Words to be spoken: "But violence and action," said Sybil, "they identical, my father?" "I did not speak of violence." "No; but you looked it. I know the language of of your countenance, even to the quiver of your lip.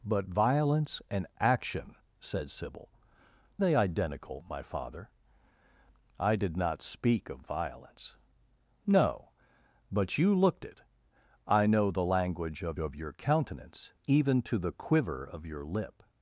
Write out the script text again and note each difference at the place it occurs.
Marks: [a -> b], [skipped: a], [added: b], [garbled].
"But violence and action," said Sybil, "they identical, my father?" "I did not speak of violence." "No; but you looked it. I know the language of of your countenance, even to the quiver of your lip.